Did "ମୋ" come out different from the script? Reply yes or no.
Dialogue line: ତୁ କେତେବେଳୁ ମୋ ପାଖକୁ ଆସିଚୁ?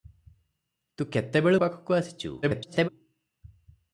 yes